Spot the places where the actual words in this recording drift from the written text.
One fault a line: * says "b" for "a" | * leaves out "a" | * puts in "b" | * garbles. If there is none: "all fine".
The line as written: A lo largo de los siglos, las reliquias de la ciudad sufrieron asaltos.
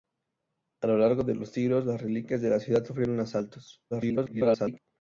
* garbles